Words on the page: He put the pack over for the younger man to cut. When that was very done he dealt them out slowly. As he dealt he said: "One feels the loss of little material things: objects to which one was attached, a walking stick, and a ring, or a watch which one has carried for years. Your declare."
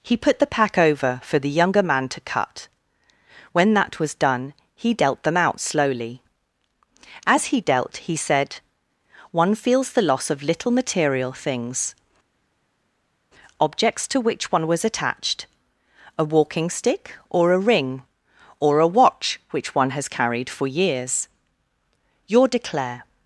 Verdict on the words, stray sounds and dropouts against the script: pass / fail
fail